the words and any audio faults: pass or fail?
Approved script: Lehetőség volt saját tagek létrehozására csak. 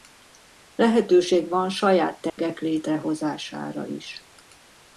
fail